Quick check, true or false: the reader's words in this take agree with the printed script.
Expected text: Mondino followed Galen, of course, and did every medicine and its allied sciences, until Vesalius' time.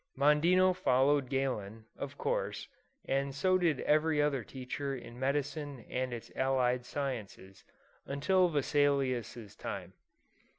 false